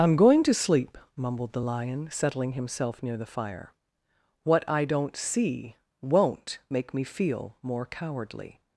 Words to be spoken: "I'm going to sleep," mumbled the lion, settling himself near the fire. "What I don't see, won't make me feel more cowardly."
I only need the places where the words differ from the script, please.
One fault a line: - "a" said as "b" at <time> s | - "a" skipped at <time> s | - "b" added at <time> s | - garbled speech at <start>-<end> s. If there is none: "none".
none